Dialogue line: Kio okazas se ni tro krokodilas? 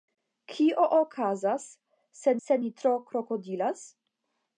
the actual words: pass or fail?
fail